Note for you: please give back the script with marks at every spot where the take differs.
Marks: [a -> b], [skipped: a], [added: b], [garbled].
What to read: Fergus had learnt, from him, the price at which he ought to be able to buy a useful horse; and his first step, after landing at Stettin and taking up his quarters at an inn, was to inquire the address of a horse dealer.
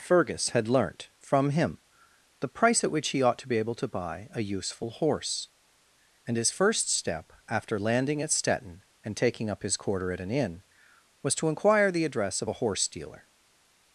Fergus had learnt, from him, the price at which he ought to be able to buy a useful horse; and his first step, after landing at Stettin and taking up his [quarters -> quarter] at an inn, was to inquire the address of a horse dealer.